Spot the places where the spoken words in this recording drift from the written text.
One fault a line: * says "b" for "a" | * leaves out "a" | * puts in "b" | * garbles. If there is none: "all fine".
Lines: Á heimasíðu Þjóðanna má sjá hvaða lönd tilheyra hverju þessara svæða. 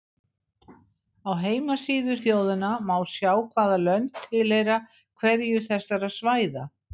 all fine